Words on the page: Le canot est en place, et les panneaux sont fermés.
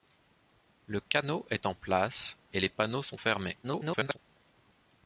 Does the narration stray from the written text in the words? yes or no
yes